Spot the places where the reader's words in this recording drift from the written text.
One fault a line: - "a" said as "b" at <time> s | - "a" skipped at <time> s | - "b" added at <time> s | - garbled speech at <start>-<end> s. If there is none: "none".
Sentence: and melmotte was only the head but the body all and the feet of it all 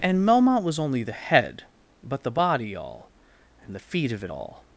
none